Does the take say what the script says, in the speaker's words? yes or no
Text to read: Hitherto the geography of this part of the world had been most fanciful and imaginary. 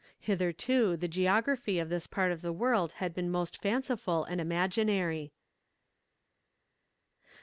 yes